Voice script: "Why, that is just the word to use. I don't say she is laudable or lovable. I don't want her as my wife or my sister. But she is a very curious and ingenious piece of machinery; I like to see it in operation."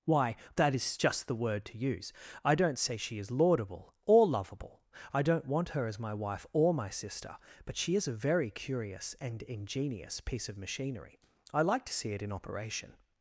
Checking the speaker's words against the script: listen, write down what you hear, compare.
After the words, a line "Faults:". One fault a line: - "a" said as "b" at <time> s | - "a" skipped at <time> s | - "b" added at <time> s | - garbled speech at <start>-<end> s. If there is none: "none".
"Why, that is just the word to use. I don't say she is laudable or lovable. I don't want her as my wife or my sister. But she is a very curious and ingenious piece of machinery; I like to see it in operation."
Faults:
none